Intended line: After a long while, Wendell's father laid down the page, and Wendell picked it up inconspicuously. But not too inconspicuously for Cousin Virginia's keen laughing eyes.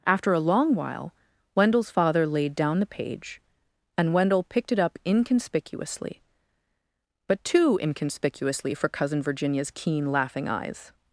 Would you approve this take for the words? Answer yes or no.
no